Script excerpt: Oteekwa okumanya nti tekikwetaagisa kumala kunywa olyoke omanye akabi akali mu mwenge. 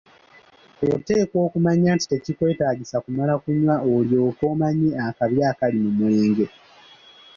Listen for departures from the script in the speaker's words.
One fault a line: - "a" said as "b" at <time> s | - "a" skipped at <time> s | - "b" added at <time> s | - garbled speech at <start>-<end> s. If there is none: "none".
none